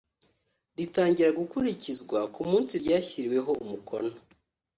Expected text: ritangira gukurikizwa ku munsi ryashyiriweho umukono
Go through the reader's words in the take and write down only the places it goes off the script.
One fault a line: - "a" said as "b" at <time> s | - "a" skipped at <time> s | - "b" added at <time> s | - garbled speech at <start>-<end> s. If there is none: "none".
none